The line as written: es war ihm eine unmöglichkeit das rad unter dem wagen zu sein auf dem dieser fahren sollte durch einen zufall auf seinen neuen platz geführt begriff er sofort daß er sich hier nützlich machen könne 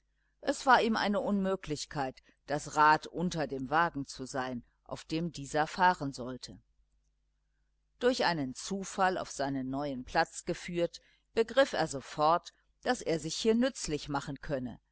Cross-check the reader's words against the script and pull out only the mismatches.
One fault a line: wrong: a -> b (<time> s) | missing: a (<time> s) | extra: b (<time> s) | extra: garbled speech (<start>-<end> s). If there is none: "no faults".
no faults